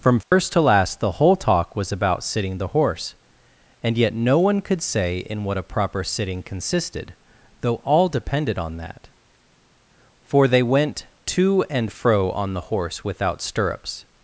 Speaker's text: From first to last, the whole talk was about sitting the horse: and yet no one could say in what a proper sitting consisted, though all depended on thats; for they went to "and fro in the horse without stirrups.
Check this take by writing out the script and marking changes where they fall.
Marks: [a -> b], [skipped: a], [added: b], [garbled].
From first to last, the whole talk was about sitting the horse: and yet no one could say in what a proper sitting consisted, though all depended on [thats; -> that] for they went to "and fro [in -> on] the horse without stirrups.